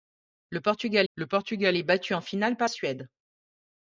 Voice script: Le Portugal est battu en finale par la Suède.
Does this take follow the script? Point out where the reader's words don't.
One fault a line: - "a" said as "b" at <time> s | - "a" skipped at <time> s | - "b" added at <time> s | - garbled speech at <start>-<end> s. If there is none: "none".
- "le Portugal" added at 1.1 s
- "la" skipped at 2.7 s